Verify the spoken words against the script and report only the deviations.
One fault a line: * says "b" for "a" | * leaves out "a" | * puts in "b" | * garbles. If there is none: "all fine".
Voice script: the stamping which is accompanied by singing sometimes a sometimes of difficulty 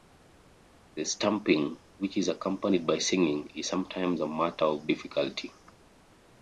* puts in "is"
* says "matter" for "sometimes"